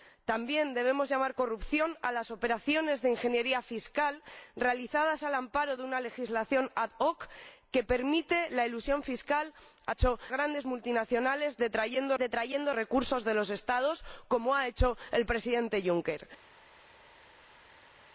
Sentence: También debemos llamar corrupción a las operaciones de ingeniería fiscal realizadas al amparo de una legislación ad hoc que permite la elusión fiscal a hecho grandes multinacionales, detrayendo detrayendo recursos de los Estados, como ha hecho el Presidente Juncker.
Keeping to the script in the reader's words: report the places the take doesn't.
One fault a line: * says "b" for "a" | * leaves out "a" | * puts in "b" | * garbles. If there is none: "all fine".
all fine